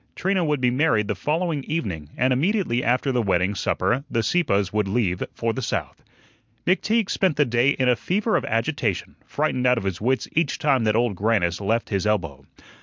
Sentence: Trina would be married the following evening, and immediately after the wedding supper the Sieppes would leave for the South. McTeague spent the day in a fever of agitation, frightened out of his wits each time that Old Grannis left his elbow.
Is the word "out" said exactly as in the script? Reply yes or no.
yes